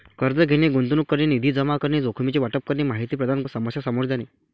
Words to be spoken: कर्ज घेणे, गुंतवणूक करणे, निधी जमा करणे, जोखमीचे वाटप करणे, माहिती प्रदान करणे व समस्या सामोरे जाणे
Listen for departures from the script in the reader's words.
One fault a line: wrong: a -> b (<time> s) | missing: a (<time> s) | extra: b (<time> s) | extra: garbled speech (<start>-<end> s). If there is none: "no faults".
missing: करणे (3.4 s)